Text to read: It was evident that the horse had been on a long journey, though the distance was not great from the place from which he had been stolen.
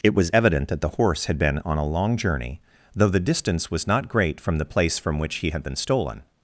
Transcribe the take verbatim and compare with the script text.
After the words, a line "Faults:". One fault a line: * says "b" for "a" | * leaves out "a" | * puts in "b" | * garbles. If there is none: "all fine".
It was evident that the horse had been on a long journey, though the distance was not great from the place from which he had been stolen.
Faults:
all fine